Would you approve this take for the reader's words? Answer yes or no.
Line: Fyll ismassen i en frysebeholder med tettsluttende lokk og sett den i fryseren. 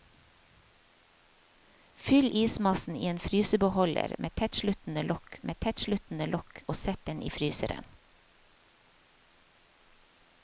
no